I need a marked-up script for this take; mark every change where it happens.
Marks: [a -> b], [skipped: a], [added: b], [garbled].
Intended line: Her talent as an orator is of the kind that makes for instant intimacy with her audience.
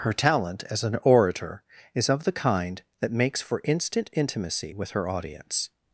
Her talent as an orator is of the kind that makes for instant intimacy with her audience.